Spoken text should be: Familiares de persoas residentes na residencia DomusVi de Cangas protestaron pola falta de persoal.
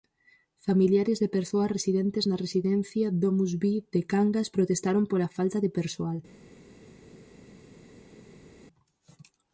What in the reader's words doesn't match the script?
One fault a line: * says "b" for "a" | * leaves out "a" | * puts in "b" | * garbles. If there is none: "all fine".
all fine